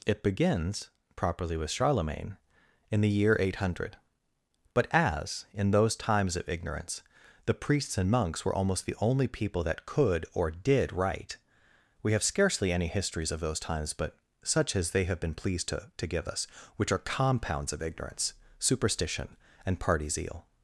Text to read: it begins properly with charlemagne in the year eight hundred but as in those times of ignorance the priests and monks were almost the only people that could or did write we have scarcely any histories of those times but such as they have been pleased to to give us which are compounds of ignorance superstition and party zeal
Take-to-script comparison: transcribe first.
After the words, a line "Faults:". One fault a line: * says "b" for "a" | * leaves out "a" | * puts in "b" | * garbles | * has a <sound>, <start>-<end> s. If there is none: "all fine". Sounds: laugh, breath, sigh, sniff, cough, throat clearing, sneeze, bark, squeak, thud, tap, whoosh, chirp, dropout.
it begins properly with charlemagne in the year eight hundred but as in those times of ignorance the priests and monks were almost the only people that could or did write we have scarcely any histories of those times but such as they have been pleased to to give us which are compounds of ignorance superstition and party zeal
Faults:
all fine